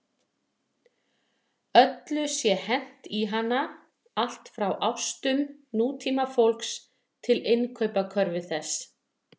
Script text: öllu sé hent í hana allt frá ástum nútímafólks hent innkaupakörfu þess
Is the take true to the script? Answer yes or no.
no